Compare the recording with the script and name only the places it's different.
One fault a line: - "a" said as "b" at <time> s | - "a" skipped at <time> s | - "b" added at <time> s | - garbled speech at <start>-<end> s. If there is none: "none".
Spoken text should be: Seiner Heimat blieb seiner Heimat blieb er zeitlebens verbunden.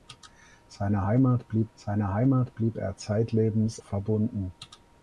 none